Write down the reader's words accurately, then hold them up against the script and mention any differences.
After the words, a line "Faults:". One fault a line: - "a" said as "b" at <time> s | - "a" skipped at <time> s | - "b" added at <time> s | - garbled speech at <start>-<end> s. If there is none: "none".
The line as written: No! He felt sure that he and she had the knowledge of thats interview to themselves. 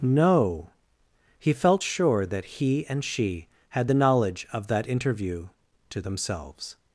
No! He felt sure that he and she had the knowledge of that interview to themselves.
Faults:
- "thats" said as "that" at 4.7 s